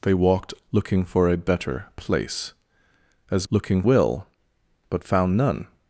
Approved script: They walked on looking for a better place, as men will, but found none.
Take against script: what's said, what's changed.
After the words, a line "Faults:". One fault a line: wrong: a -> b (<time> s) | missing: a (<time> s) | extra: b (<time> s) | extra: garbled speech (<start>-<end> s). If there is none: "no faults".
They walked looking for a better place, as looking will, but found none.
Faults:
missing: on (0.6 s)
wrong: men -> looking (3.5 s)